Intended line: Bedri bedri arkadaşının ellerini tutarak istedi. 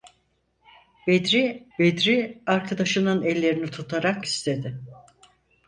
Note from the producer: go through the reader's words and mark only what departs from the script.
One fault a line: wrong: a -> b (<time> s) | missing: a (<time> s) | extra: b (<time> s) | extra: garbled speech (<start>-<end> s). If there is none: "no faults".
no faults